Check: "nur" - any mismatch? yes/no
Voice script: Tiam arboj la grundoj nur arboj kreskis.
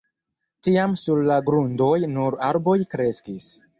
no